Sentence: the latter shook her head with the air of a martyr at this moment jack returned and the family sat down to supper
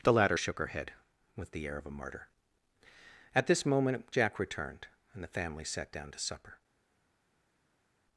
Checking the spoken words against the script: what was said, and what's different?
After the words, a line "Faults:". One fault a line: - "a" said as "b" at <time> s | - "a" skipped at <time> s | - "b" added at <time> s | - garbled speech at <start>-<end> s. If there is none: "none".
the latter shook her head with the air of a martyr at this moment jack returned and the family sat down to supper
Faults:
none